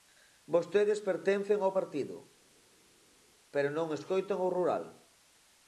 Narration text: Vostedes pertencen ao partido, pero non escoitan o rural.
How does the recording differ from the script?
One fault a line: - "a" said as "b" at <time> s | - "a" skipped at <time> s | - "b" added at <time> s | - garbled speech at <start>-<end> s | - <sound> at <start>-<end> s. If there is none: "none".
none